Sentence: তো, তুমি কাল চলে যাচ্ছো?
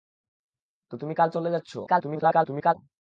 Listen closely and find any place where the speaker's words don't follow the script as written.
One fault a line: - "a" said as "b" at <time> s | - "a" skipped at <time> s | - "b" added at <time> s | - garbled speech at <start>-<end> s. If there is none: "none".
- garbled speech at 1.9-2.7 s